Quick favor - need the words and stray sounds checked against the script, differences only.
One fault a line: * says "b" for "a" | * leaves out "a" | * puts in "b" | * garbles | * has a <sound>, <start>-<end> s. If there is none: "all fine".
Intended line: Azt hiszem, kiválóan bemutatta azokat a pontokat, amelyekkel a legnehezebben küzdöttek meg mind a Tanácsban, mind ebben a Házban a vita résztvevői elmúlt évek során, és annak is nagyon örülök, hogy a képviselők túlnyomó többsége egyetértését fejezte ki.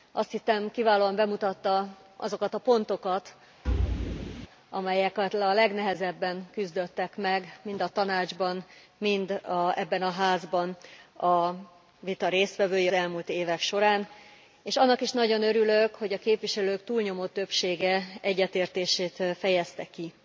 * has a thud, 3.6-4.5 s